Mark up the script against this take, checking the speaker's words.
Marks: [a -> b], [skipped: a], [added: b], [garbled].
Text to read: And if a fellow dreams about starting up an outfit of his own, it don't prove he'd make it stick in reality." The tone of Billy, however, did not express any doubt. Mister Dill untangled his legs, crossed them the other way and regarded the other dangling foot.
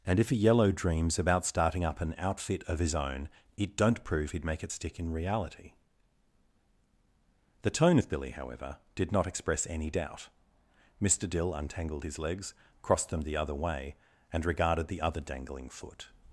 And if a [fellow -> yellow] dreams about starting up an outfit of his own, it don't prove he'd make it stick in reality." The tone of Billy, however, did not express any doubt. Mister Dill untangled his legs, crossed them the other way and regarded the other dangling foot.